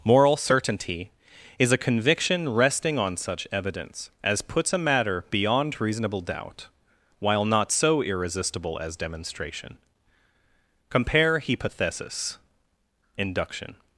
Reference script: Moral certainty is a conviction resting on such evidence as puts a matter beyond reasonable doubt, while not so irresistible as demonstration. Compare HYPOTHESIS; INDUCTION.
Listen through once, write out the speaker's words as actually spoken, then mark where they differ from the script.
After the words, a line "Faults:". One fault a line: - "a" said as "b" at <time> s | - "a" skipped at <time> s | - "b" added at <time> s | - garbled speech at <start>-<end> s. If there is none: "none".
Moral certainty is a conviction resting on such evidence as puts a matter beyond reasonable doubt, while not so irresistible as demonstration. Compare HYPOTHESIS; INDUCTION.
Faults:
none